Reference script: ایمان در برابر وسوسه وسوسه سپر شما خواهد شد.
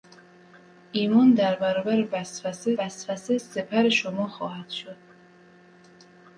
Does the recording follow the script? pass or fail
pass